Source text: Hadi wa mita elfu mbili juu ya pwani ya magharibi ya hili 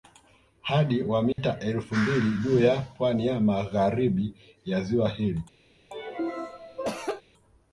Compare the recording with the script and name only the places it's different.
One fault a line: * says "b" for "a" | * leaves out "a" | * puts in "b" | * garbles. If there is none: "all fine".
* puts in "ziwa"